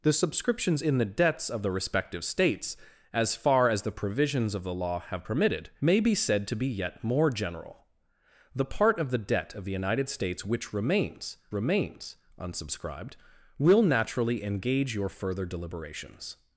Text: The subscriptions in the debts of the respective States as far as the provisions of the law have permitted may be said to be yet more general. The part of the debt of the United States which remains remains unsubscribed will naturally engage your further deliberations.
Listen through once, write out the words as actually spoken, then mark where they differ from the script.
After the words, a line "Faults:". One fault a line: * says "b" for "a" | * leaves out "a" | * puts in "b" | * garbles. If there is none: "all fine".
The subscriptions in the debts of the respective States as far as the provisions of the law have permitted may be said to be yet more general. The part of the debt of the United States which remains remains unsubscribed will naturally engage your further deliberations.
Faults:
all fine